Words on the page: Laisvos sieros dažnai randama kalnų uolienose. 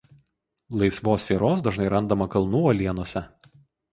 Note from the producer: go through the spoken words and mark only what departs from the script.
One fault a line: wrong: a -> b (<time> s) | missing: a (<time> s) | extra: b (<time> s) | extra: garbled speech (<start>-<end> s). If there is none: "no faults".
no faults